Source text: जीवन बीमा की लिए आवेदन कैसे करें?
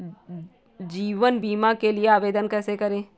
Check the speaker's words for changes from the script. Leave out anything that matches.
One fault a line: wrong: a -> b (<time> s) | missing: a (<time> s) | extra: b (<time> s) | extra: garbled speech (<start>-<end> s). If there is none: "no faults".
wrong: की -> के (1.7 s)